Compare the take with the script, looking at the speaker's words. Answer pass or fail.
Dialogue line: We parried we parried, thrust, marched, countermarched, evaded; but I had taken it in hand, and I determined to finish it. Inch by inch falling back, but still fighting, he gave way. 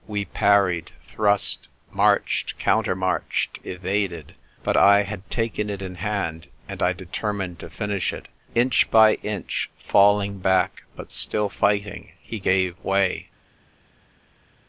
fail